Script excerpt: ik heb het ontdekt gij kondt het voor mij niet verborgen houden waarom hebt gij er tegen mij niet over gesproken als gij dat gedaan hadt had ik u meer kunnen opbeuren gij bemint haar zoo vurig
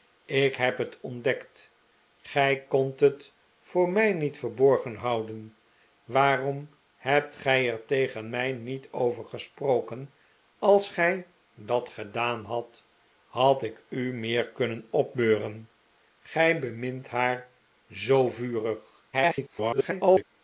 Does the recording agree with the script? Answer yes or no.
no